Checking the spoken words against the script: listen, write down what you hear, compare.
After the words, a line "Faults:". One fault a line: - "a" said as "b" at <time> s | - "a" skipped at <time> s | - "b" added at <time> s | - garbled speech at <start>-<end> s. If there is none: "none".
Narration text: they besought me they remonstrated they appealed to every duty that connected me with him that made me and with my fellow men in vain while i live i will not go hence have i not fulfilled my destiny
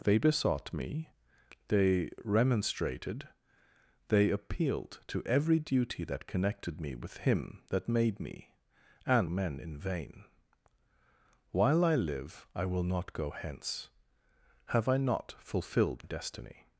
they besought me they remonstrated they appealed to every duty that connected me with him that made me and men in vain while i live i will not go hence have i not fulfilled destiny
Faults:
- "with my fellow" skipped at 9.3 s
- "my" skipped at 16.1 s